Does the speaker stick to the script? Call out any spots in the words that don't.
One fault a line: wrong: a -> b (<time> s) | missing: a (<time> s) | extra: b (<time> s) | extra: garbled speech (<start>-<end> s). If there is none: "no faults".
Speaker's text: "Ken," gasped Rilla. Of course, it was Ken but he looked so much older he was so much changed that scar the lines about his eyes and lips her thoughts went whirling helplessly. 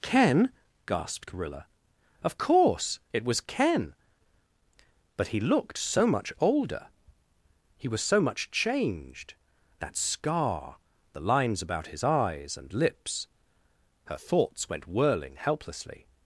no faults